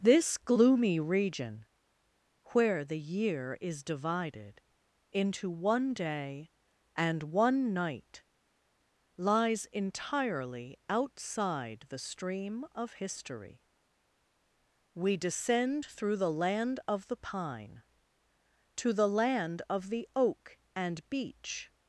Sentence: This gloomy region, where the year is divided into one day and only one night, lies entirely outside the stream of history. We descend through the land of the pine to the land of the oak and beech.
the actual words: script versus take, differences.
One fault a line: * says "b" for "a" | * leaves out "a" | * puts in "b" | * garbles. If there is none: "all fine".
* leaves out "only"